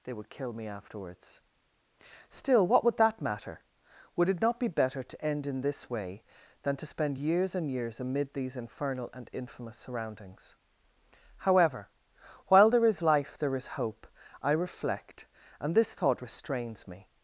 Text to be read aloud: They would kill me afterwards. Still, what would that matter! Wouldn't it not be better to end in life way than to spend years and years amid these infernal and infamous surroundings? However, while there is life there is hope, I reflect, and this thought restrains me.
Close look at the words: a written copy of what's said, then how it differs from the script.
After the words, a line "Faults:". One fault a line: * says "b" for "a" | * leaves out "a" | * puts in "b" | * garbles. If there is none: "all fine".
They would kill me afterwards. Still, what would that matter! Would it not be better to end in this way than to spend years and years amid these infernal and infamous surroundings? However, while there is life there is hope, I reflect, and this thought restrains me.
Faults:
* says "Would" for "Wouldn't"
* says "this" for "life"